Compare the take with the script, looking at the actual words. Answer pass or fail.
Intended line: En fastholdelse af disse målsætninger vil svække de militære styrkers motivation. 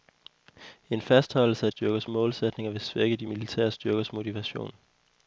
fail